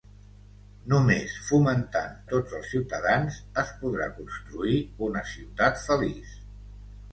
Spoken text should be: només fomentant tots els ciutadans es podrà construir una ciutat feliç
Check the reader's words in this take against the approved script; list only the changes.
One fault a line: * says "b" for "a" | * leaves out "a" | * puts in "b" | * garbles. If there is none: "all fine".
all fine